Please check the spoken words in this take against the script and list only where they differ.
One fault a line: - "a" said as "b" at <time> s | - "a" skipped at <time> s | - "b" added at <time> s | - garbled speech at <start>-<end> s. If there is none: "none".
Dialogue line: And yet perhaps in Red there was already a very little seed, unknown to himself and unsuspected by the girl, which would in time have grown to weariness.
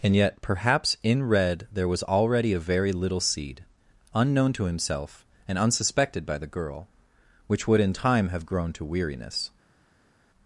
none